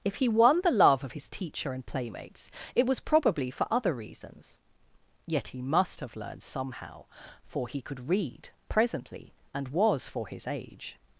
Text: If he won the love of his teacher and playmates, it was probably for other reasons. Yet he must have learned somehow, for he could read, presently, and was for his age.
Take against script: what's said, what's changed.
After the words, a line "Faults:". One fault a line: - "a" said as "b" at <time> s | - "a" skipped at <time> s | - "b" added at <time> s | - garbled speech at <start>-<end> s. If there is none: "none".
If he won the love of his teacher and playmates, it was probably for other reasons. Yet he must have learned somehow, for he could read, presently, and was for his age.
Faults:
none